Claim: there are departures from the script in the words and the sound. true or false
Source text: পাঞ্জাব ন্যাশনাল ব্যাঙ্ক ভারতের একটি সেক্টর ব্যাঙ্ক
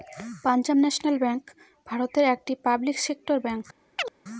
true